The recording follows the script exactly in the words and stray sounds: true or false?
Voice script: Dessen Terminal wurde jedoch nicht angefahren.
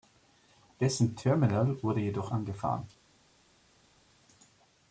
false